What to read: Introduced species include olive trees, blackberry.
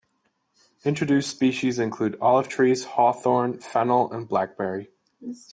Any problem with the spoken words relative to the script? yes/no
yes